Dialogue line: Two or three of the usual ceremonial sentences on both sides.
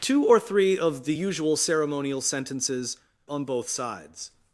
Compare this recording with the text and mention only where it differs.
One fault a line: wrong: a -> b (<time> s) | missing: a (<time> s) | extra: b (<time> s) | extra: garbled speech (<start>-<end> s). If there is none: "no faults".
no faults